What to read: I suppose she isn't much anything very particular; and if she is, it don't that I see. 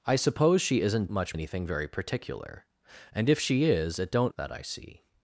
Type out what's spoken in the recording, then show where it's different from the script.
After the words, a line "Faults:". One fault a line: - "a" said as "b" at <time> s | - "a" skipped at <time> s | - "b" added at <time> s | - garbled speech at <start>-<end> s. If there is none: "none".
I suppose she isn't much anything very particular; and if she is, it don't that I see.
Faults:
none